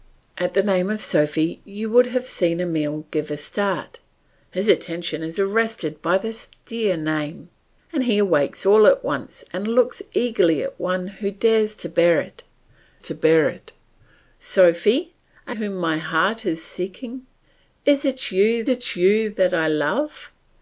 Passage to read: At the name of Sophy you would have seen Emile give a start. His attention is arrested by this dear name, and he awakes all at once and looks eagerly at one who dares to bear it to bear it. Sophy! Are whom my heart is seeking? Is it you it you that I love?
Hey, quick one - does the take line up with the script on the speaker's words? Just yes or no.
yes